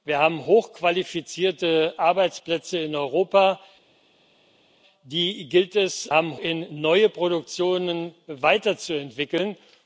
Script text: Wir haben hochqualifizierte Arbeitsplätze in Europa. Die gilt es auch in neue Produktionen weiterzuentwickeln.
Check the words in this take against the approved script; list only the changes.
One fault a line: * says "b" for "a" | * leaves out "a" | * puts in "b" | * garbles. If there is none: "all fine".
* says "haben" for "auch"